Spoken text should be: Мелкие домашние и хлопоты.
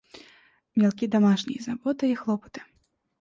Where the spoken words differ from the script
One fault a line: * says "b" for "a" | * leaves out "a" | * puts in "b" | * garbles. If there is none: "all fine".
* puts in "заботы"